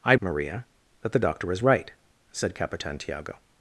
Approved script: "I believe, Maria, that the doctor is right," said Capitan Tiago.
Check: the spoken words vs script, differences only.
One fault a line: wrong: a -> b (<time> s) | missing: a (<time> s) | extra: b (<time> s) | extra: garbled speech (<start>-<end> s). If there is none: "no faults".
missing: believe (0.1 s)